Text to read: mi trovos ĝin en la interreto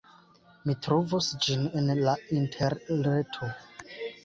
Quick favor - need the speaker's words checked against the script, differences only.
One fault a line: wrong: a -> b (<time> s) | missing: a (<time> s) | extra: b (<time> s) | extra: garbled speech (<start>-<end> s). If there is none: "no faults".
no faults